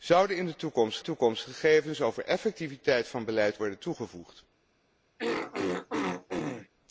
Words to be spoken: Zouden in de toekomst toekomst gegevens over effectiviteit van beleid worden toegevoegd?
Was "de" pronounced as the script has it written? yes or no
yes